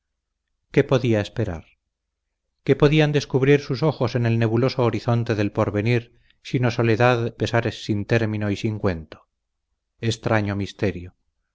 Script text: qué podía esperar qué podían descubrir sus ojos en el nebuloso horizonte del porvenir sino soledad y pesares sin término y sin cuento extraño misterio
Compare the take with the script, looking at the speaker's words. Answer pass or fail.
fail